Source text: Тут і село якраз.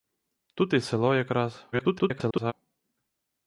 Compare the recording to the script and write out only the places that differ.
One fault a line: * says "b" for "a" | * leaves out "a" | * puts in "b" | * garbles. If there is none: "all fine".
* garbles